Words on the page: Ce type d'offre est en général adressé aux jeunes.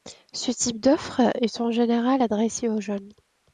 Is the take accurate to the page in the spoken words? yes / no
yes